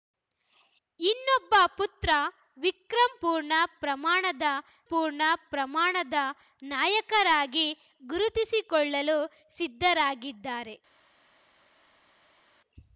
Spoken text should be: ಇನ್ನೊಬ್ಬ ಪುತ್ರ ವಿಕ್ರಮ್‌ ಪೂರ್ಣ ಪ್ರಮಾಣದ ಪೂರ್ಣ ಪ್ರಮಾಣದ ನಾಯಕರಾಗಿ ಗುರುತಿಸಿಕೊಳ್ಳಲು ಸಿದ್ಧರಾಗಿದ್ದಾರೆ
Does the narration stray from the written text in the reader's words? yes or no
no